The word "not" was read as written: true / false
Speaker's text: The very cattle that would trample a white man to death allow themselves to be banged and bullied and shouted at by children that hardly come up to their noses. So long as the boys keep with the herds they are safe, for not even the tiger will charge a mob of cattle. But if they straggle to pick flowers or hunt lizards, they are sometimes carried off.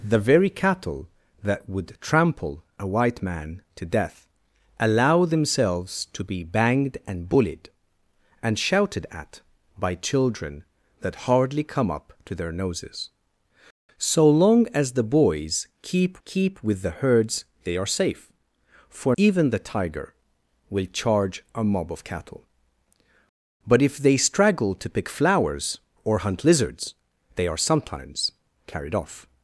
false